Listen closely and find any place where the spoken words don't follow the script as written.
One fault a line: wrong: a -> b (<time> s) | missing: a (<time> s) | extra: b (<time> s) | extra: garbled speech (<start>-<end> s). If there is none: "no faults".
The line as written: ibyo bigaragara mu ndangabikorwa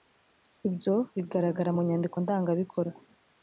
extra: nyandiko (1.9 s)